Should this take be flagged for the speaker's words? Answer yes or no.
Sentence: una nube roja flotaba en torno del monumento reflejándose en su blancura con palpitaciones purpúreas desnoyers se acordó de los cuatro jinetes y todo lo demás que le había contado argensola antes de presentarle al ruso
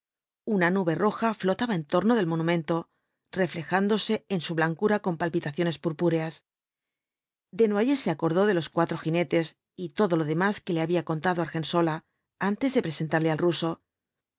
no